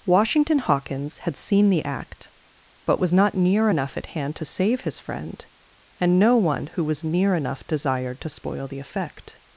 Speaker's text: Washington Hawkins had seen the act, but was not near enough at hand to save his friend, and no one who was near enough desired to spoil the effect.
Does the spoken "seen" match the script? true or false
true